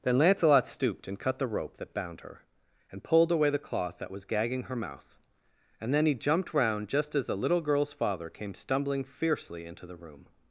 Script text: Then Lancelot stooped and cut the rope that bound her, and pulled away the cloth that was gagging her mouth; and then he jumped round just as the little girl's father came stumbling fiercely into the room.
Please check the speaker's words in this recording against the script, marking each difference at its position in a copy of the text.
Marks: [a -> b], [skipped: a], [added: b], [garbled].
Then Lancelot stooped and cut the rope that bound her, and pulled away the cloth that was gagging her mouth; and then he jumped round just as the little girl's father came stumbling fiercely into the room.